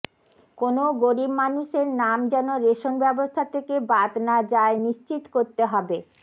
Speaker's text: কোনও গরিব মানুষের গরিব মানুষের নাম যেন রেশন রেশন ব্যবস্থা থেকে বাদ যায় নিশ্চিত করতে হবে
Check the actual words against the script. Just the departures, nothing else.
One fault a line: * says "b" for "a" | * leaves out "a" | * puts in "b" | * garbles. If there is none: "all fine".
* leaves out "গরিব মানুষের"
* leaves out "রেশন"
* puts in "না"